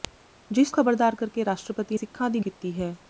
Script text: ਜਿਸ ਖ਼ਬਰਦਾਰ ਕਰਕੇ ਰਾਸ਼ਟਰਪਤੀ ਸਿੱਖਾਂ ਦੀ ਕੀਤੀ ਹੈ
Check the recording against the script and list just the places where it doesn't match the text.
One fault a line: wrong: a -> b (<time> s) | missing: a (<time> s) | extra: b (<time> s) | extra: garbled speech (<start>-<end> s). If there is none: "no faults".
no faults